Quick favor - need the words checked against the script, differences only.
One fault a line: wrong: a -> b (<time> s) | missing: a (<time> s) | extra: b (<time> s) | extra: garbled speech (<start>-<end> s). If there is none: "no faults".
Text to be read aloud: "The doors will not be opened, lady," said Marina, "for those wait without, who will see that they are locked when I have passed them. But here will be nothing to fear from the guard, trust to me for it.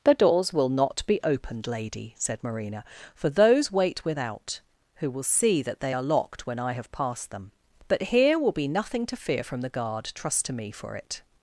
no faults